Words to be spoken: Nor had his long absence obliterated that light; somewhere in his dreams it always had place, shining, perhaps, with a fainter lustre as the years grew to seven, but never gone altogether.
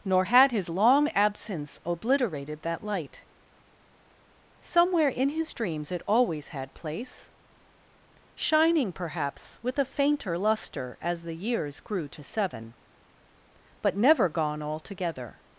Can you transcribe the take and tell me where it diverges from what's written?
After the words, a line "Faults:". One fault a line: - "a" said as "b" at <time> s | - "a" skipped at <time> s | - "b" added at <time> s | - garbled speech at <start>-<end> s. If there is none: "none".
Nor had his long absence obliterated that light; somewhere in his dreams it always had place, shining, perhaps, with a fainter lustre as the years grew to seven, but never gone altogether.
Faults:
none